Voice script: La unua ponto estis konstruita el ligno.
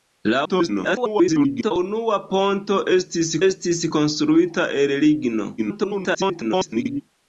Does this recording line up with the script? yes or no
no